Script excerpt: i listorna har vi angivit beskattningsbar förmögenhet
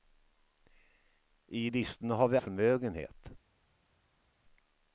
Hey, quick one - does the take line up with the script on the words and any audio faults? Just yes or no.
no